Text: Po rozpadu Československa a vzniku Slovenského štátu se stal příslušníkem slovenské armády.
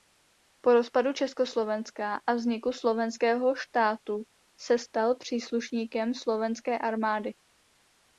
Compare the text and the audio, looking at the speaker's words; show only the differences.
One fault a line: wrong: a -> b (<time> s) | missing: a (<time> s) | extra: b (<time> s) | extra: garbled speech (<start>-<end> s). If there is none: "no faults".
no faults